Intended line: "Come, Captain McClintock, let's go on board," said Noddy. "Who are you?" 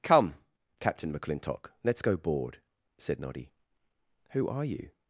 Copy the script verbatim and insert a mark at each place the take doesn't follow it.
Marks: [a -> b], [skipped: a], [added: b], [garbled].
"Come, Captain McClintock, let's go [skipped: on] board," said Noddy. "Who are you?"